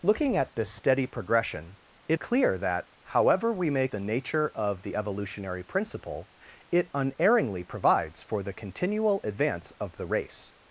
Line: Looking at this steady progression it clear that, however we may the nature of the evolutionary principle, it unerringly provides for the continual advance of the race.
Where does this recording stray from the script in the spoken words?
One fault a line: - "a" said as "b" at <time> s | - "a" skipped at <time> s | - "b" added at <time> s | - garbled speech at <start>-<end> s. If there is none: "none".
none